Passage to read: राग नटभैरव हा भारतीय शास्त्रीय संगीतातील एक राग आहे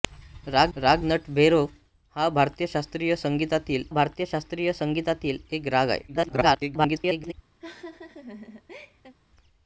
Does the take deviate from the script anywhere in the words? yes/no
yes